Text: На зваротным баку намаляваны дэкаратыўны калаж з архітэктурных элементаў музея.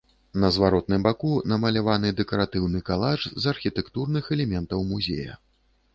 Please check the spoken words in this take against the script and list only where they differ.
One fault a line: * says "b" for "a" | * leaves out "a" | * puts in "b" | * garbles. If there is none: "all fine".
all fine